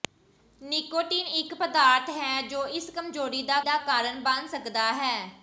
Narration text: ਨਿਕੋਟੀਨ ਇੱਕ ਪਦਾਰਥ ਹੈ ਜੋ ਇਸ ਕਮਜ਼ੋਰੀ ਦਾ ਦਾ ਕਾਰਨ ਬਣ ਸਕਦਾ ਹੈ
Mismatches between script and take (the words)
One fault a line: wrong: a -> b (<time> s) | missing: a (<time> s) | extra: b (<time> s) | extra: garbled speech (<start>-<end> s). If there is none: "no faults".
no faults